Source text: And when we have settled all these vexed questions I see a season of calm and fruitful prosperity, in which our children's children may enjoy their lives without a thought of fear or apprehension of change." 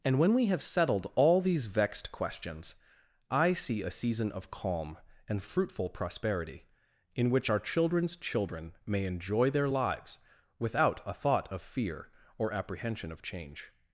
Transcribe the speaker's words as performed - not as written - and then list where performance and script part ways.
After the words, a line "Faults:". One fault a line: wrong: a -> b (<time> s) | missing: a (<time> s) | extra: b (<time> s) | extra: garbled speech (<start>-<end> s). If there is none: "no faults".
And when we have settled all these vexed questions I see a season of calm and fruitful prosperity, in which our children's children may enjoy their lives without a thought of fear or apprehension of change."
Faults:
no faults